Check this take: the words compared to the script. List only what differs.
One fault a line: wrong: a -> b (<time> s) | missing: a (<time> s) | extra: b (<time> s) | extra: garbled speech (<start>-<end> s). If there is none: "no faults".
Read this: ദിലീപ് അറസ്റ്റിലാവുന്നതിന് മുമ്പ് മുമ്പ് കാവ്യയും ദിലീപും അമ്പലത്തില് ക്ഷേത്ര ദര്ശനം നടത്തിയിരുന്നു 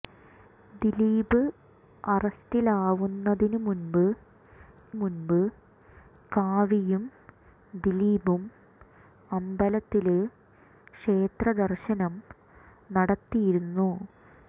no faults